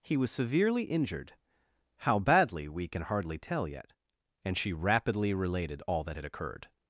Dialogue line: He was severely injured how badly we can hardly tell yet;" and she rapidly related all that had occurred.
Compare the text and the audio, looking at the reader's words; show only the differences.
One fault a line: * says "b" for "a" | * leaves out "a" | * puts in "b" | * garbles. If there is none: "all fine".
all fine